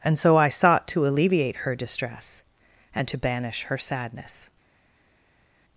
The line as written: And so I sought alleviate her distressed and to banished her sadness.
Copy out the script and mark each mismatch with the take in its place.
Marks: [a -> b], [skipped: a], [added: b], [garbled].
And so I sought [added: to] alleviate her [distressed -> distress] and to [banished -> banish] her sadness.